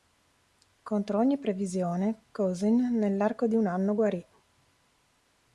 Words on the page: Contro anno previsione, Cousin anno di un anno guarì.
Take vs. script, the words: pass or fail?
fail